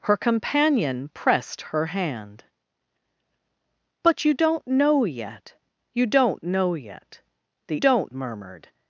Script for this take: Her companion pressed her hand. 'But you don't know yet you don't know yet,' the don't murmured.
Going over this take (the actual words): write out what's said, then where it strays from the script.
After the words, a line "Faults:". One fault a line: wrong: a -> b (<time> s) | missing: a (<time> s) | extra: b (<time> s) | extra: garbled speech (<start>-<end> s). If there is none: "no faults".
Her companion pressed her hand. 'But you don't know yet you don't know yet,' the don't murmured.
Faults:
no faults